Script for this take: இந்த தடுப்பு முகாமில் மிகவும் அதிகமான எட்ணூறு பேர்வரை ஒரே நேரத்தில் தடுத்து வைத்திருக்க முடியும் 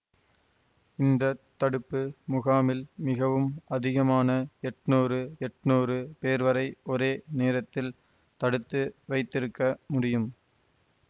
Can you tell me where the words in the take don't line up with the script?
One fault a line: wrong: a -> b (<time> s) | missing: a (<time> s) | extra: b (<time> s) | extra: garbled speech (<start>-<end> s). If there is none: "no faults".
extra: எட்ணூறு (5.5 s)